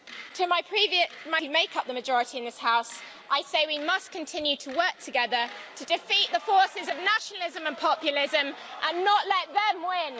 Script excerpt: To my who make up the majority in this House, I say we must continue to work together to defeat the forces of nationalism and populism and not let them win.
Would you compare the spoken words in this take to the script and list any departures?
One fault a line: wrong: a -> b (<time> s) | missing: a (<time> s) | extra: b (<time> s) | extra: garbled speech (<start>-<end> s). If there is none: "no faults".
no faults